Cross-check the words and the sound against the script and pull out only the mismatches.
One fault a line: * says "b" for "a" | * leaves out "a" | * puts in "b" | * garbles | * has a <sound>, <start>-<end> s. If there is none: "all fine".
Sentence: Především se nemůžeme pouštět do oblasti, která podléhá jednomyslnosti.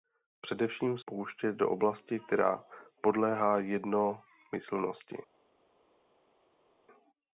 * leaves out "se nemůžeme"